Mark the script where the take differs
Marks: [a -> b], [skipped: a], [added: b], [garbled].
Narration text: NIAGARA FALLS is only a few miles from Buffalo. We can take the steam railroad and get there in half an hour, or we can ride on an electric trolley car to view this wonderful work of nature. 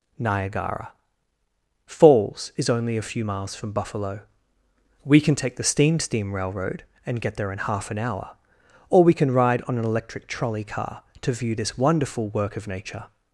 NIAGARA FALLS is only a few miles from Buffalo. We can take the steam [added: steam] railroad and get there in half an hour, or we can ride on an electric trolley car to view this wonderful work of nature.